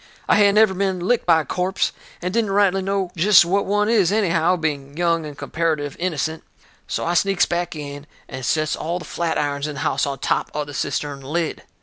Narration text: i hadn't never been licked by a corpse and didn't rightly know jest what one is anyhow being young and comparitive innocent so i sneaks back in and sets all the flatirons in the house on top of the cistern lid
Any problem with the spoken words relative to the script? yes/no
no